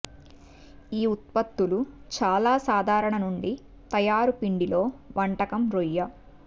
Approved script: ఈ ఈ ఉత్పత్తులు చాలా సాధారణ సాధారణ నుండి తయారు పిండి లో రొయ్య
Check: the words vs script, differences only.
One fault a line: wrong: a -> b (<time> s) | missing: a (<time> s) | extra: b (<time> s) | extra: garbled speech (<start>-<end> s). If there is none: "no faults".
missing: ఈ (1.1 s)
missing: సాధారణ (3.2 s)
extra: వంటకం (5.2 s)